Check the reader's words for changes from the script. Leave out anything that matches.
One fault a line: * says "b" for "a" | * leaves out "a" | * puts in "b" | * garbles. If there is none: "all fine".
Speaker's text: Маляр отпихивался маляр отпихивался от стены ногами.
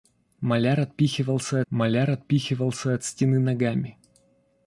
all fine